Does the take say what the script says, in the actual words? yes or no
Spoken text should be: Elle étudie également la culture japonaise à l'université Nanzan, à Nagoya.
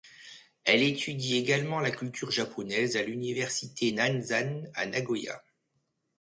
yes